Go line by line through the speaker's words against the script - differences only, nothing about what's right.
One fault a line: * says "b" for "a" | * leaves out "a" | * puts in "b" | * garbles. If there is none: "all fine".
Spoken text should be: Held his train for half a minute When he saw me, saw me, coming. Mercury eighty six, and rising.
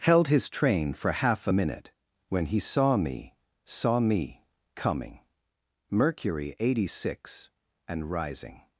all fine